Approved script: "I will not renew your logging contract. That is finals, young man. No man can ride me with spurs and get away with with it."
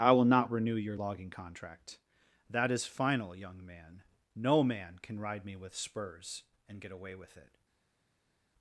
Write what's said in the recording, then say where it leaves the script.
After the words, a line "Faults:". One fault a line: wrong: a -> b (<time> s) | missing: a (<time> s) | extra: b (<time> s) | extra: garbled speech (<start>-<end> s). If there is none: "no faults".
"I will not renew your logging contract. That is final, young man. No man can ride me with spurs and get away with it."
Faults:
wrong: finals -> final (2.9 s)
missing: with (7.4 s)